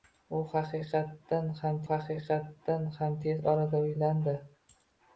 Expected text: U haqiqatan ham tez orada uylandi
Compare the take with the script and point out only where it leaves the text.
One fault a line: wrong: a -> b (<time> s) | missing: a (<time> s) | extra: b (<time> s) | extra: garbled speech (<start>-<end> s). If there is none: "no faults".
extra: haqiqatan ham (1.9 s)